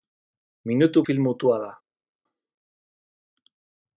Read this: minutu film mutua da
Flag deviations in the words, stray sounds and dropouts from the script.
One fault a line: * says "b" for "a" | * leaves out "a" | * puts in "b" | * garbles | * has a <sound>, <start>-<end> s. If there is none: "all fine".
all fine